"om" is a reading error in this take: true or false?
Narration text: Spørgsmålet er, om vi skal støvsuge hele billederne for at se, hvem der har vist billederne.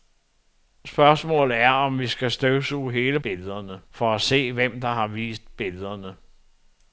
false